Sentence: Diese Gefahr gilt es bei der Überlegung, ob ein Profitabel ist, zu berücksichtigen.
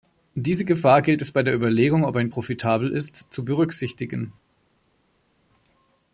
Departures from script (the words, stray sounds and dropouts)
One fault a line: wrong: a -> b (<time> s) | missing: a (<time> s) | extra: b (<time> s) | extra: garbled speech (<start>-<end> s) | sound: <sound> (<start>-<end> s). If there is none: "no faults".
no faults